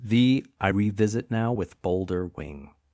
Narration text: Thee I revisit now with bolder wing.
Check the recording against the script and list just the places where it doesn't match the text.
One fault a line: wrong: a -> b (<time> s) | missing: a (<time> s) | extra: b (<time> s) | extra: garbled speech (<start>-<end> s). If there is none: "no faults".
no faults